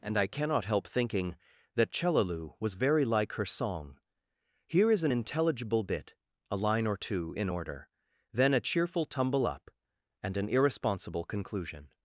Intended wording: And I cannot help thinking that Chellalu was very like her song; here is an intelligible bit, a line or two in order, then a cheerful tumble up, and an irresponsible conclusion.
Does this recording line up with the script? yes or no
yes